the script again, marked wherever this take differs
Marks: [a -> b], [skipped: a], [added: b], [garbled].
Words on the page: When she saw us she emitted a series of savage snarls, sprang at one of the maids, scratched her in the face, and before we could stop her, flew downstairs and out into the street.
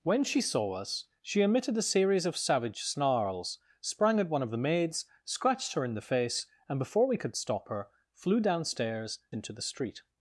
When she saw us she emitted a series of savage snarls, sprang at one of the maids, scratched her in the face, and before we could stop her, flew downstairs [skipped: and out] into the street.